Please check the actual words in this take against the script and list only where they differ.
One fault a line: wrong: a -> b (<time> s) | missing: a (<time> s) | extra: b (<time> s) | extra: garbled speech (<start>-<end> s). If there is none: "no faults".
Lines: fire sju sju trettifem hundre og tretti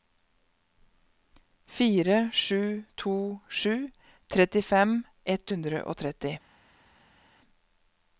extra: to (2.9 s)
extra: ett (5.3 s)